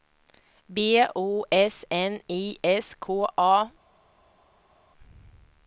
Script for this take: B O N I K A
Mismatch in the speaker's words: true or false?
true